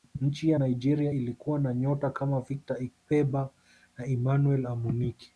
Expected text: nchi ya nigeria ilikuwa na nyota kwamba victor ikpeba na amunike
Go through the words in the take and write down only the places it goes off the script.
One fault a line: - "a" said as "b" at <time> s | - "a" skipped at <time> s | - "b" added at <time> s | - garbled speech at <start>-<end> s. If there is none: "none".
- "kwamba" said as "kama" at 2.1 s
- "emmanuel" added at 4.1 s